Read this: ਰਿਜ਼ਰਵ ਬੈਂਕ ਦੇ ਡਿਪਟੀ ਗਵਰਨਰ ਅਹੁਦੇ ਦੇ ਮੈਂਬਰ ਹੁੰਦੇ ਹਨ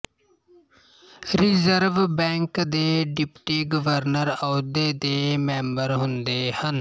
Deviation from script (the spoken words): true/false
false